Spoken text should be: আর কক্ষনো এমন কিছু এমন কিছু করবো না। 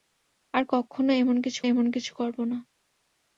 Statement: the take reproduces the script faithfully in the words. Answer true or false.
true